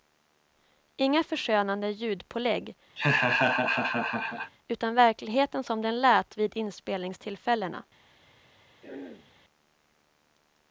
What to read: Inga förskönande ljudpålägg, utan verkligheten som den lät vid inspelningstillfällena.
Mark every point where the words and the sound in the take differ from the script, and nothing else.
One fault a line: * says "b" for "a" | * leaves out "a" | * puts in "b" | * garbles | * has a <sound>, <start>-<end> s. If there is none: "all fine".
* has a laugh, 3.0-4.5 s
* has a throat clearing, 8.8-9.3 s